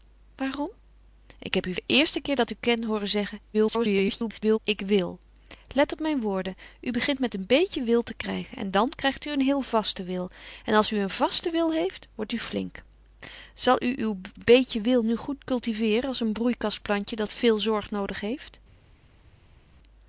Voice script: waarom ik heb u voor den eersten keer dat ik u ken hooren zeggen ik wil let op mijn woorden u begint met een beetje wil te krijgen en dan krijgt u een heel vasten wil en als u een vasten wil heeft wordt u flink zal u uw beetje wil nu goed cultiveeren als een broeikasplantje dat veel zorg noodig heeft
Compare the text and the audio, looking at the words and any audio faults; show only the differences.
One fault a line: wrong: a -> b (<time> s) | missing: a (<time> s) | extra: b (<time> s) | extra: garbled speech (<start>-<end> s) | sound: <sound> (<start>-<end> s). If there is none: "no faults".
missing: voor (1.8 s)
extra: garbled speech (3.5-4.6 s)